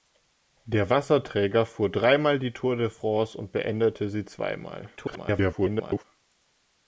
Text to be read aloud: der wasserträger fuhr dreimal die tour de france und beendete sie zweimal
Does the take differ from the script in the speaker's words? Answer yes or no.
yes